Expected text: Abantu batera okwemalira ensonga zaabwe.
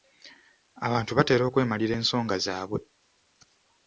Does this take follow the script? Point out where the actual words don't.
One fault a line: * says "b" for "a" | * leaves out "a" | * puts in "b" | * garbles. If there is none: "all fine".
all fine